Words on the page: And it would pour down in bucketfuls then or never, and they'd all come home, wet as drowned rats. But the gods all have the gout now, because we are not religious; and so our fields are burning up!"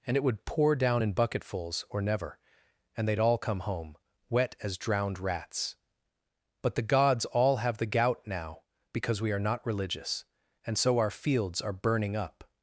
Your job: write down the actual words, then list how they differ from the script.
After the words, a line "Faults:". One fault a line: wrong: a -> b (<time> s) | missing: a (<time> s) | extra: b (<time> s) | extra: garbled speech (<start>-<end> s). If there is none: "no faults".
And it would pour down in bucketfuls or never, and they'd all come home, wet as drowned rats. But the gods all have the gout now, because we are not religious; and so our fields are burning up!"
Faults:
missing: then (1.8 s)